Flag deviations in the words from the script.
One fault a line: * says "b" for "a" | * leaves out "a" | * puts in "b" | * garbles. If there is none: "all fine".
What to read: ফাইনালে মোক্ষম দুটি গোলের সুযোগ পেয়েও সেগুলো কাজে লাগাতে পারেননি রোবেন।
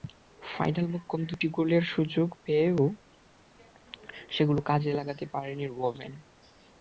all fine